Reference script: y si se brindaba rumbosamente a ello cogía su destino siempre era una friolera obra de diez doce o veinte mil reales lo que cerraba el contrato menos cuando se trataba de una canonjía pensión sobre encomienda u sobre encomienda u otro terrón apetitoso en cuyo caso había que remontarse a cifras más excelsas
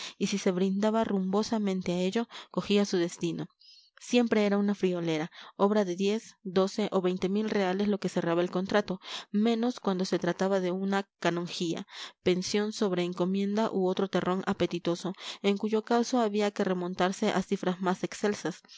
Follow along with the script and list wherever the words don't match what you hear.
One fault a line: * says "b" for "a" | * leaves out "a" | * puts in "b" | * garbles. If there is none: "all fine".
* leaves out "sobre encomienda u"